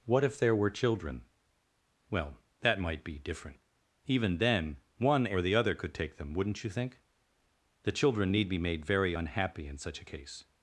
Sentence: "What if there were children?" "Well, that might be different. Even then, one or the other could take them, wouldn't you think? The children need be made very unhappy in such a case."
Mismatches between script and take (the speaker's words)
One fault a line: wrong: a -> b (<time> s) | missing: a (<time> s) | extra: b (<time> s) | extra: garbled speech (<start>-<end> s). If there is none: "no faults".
no faults